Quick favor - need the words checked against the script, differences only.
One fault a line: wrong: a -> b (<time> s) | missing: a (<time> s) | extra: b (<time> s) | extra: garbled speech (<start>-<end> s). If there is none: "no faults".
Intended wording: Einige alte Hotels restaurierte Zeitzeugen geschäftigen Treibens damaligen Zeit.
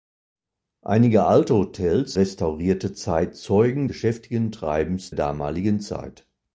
no faults